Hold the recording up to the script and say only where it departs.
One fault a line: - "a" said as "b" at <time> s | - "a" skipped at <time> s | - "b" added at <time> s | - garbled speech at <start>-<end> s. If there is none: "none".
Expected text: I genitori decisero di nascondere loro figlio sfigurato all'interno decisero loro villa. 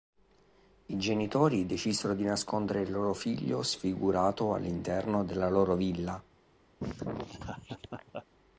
- "il" added at 2.8 s
- "decisero" said as "della" at 5.3 s